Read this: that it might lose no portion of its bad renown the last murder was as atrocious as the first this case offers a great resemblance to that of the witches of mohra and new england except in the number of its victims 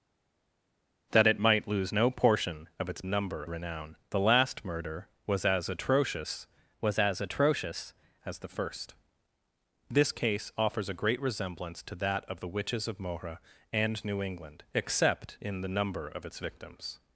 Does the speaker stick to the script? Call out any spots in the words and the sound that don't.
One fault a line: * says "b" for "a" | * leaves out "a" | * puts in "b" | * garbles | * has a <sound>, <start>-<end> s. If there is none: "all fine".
* says "number" for "bad"
* puts in "was as atrocious"